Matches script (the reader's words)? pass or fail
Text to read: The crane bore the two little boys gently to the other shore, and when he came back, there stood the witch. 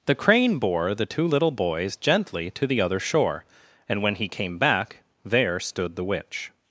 pass